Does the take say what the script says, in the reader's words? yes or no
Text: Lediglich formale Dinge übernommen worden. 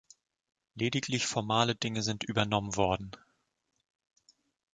no